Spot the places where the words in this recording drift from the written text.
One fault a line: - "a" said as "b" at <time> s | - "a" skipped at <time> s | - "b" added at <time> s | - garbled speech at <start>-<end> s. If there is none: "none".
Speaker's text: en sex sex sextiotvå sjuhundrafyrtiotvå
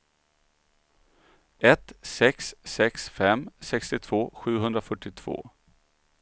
- "en" said as "ett" at 1.6 s
- "fem" added at 3.1 s